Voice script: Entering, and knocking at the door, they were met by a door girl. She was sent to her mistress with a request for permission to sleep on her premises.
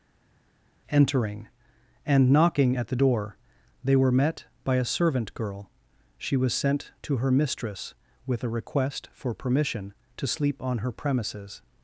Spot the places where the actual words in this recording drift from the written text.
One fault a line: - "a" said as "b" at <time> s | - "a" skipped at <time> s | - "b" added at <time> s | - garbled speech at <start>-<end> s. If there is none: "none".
- "door" said as "servant" at 4.9 s